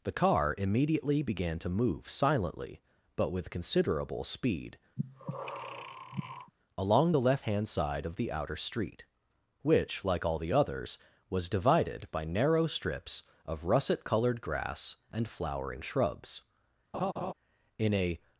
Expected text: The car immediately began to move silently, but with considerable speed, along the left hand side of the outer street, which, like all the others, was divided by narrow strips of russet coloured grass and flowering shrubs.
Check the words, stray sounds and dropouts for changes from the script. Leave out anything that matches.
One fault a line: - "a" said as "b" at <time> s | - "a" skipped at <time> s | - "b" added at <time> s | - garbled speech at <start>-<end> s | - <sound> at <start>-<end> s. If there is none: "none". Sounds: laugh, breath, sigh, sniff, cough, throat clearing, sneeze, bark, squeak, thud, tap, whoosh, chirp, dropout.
- breath at 5.0-6.5 s
- laugh at 16.9-17.3 s
- "In a" added at 17.8 s